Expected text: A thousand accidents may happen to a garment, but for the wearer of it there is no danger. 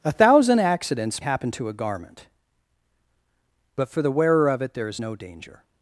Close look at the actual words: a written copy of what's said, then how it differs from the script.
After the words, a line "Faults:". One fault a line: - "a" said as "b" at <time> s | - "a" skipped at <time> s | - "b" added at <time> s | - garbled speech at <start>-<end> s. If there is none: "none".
A thousand accidents happen to a garment, but for the wearer of it there is no danger.
Faults:
- "may" skipped at 1.2 s